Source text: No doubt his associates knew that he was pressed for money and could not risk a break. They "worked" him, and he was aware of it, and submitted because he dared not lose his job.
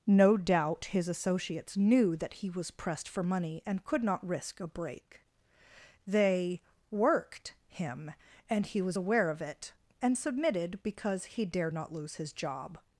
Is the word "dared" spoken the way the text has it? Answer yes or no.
yes